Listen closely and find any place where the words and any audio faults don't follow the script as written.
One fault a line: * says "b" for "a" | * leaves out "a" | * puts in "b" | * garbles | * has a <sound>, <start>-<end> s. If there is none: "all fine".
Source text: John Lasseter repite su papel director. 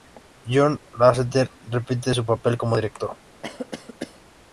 * puts in "como"
* has a cough, 3.4-4.2 s